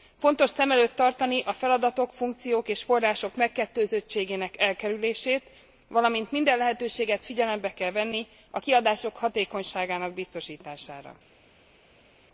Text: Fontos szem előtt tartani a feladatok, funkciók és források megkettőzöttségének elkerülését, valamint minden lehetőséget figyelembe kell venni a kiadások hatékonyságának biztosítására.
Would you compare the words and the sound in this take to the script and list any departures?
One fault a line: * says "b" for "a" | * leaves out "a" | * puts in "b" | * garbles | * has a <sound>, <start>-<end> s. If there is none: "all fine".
all fine